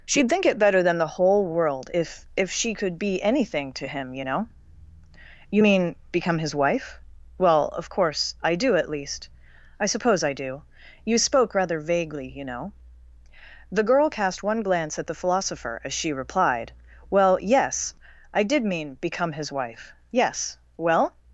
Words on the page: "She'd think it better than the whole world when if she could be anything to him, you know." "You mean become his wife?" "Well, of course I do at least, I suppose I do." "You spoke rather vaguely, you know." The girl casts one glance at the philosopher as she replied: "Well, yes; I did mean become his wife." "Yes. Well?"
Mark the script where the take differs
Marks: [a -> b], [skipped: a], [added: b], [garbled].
"She'd think it better than the whole world [when -> if] if she could be anything to him, you know." "You mean become his wife?" "Well, of course I do at least, I suppose I do." "You spoke rather vaguely, you know." The girl [casts -> cast] one glance at the philosopher as she replied: "Well, yes; I did mean become his wife." "Yes. Well?"